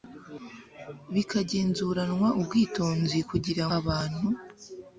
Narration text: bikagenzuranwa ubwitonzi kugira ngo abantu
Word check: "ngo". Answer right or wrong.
wrong